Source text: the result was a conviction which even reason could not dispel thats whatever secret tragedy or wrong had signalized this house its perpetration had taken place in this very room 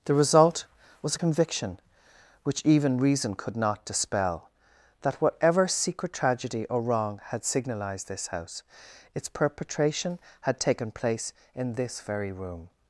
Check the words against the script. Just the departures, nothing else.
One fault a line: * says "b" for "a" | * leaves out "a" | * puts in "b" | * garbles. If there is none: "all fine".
* says "that" for "thats"